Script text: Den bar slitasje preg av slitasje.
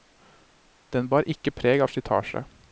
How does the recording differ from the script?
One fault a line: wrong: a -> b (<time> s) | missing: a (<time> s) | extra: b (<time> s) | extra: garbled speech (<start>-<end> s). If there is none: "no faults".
wrong: slitasje -> ikke (1.3 s)